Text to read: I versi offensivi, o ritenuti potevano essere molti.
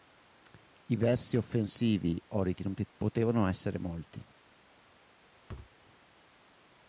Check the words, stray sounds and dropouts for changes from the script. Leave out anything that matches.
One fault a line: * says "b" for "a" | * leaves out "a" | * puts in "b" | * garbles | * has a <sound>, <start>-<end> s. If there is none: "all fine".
* has a thud, 5.5-5.7 s